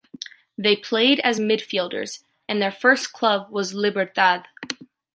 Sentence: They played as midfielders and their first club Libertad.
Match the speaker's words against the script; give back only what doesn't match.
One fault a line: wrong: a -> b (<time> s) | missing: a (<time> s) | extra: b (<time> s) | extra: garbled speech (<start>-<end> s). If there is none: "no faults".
extra: was (3.5 s)